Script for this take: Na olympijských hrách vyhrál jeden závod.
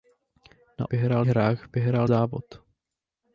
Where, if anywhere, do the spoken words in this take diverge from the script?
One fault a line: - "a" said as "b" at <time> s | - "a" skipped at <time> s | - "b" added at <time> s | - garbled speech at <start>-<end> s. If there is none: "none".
- "olympijských" said as "vyhrál" at 0.9 s
- "jeden" skipped at 2.1 s